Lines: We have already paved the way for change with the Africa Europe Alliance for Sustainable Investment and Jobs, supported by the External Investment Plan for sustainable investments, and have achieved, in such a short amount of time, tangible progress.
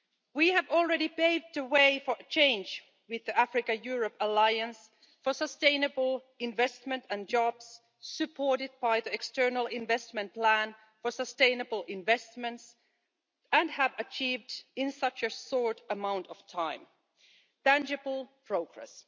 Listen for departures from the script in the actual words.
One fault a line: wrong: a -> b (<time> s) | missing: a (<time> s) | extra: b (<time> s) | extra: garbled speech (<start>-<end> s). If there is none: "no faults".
no faults